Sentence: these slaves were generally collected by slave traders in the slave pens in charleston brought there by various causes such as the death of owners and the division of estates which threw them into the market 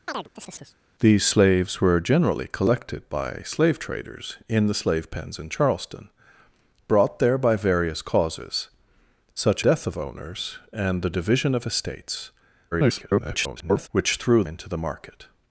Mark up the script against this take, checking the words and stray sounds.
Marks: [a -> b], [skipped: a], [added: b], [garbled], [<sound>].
[chirp] these slaves were generally collected by slave traders in the slave pens in charleston brought there by various causes such [skipped: as the] death of owners and the division of estates [garbled] which threw [skipped: them] into the market